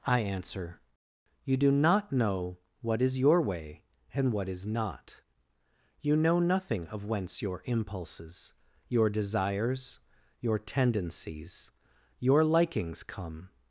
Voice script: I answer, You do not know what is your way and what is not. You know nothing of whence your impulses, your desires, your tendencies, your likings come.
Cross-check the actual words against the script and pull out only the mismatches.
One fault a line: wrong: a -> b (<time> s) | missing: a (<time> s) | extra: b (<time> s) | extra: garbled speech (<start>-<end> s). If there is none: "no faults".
no faults